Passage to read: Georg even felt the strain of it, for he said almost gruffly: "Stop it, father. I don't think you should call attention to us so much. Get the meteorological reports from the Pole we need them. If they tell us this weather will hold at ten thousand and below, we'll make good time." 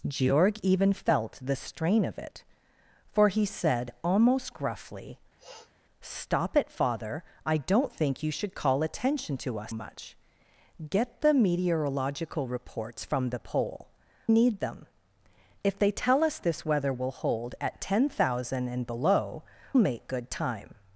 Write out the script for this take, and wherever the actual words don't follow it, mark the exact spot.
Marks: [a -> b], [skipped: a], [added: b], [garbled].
Georg even felt the strain of it, for he said almost gruffly: "Stop it, father. I don't think you should call attention to us [skipped: so] much. Get the meteorological reports from the Pole [skipped: we] need them. If they tell us this weather will hold at ten thousand and below, [skipped: we'll] make good time."